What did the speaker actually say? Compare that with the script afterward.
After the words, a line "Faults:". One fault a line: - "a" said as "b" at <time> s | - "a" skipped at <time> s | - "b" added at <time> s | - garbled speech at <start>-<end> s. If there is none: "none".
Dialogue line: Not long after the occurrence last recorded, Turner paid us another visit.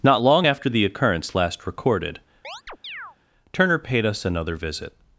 Not long after the occurrence last recorded, Turner paid us another visit.
Faults:
none